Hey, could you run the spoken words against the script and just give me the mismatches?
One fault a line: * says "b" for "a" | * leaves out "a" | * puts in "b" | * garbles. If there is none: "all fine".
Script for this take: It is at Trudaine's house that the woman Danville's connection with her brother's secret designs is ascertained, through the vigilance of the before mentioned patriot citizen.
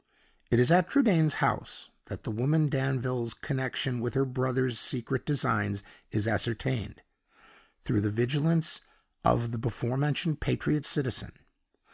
all fine